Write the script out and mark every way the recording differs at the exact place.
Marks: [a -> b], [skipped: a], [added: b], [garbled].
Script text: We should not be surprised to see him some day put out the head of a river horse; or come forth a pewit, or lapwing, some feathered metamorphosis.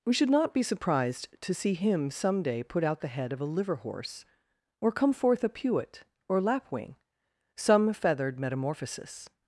We should not be surprised to see him some day put out the head of a [river -> liver] horse; or come forth a pewit, or lapwing, some feathered metamorphosis.